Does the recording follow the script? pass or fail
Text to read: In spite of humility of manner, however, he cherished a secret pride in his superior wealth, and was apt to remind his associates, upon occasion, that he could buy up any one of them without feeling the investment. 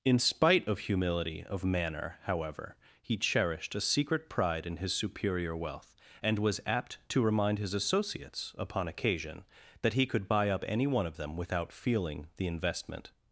pass